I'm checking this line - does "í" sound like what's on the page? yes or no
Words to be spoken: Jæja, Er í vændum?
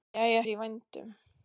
yes